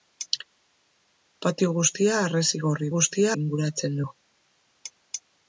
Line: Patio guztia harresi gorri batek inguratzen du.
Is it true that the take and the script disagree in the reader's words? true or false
true